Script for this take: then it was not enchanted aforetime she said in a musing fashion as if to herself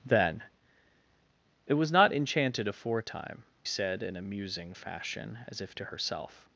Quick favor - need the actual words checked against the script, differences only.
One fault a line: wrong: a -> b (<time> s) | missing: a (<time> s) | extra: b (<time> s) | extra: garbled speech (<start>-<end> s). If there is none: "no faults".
missing: she (3.4 s)